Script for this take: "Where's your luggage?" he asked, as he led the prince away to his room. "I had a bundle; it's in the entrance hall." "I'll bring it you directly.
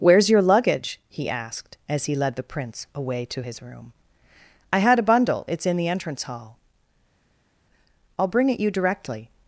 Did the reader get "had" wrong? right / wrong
right